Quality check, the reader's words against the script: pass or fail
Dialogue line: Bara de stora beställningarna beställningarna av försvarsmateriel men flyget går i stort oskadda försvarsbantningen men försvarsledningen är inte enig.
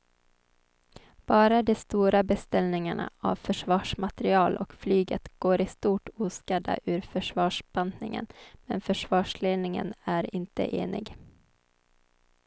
fail